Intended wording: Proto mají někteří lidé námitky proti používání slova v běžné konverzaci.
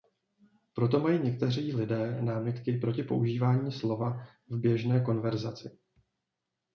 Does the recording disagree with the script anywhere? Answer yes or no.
no